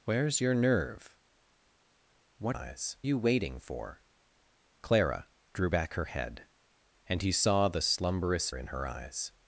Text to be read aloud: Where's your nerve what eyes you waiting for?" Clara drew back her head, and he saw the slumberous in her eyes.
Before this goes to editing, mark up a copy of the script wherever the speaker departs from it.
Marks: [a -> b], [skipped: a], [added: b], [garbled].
Where's your nerve what eyes you waiting for?" Clara drew back her head, and he saw the slumberous in her eyes.